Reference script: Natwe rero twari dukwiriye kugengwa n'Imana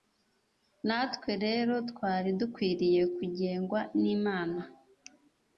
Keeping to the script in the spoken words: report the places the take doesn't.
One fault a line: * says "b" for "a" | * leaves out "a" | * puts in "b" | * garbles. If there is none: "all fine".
all fine